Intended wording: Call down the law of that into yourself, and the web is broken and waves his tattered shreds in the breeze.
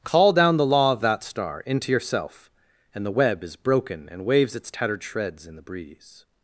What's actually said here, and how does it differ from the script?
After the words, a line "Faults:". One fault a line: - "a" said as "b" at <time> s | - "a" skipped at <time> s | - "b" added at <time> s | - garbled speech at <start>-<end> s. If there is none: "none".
Call down the law of that star into yourself, and the web is broken and waves its tattered shreds in the breeze.
Faults:
- "star" added at 1.2 s
- "his" said as "its" at 4.5 s